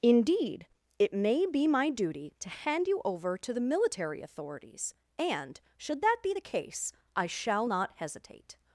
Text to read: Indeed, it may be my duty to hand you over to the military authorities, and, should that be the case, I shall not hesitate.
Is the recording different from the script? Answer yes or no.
no